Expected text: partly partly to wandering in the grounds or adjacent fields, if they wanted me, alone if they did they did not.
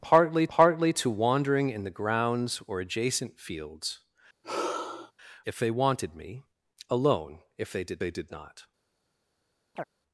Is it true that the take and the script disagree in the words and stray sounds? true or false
true